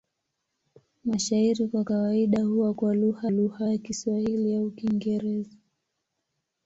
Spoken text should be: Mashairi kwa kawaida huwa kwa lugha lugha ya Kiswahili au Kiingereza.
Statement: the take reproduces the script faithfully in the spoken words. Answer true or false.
true